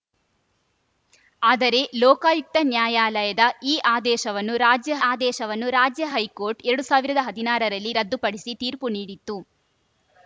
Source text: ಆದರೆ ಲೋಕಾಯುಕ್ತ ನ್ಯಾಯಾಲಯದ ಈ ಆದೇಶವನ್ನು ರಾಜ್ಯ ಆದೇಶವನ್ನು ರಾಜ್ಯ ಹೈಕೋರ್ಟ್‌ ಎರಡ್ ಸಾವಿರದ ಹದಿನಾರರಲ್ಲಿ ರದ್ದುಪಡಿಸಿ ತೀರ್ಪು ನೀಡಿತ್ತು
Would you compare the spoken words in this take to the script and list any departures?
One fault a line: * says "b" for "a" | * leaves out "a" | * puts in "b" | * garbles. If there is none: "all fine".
all fine